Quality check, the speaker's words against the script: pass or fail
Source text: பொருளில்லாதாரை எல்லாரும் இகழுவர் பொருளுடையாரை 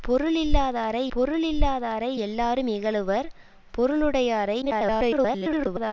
fail